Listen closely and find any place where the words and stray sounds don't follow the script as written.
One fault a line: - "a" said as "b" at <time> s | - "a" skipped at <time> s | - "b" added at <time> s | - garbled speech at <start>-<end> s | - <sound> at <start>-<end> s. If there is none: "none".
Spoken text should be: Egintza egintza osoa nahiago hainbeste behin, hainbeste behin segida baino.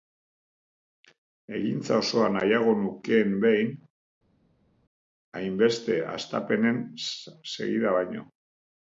- "egintza" skipped at 2.0 s
- "hainbeste" said as "nukeen" at 2.8 s
- "behin" said as "hastapenen" at 6.1 s